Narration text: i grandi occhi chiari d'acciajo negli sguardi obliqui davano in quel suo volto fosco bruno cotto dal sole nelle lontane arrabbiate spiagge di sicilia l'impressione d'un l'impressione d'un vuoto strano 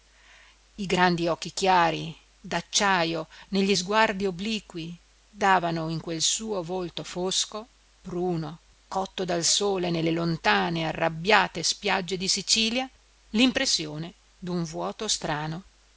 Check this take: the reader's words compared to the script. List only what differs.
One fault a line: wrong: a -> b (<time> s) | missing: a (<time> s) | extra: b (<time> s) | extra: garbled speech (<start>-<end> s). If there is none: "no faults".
missing: l'impressione d'un (14.6 s)